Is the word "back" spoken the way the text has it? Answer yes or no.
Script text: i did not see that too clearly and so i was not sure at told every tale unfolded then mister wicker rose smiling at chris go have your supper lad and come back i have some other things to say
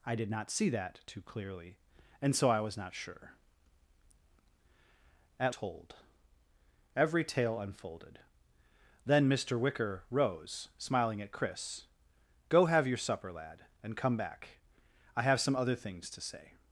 yes